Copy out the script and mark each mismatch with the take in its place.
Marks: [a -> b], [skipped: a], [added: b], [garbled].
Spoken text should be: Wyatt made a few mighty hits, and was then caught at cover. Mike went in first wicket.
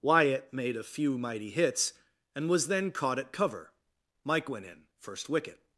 Wyatt made a few mighty hits, and was then caught at cover. Mike went in first wicket.